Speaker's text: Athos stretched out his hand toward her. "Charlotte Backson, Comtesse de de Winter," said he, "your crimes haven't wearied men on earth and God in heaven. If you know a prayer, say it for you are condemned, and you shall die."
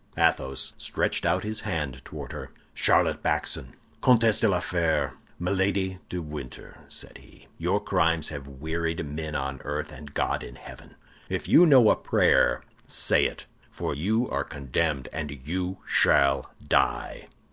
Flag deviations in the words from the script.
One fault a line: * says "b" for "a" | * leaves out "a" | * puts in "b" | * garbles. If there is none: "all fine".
* puts in "la Fère Milady"
* says "have" for "haven't"